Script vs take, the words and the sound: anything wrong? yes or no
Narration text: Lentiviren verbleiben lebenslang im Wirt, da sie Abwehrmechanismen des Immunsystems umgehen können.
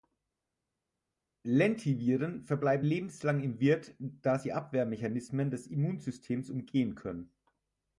no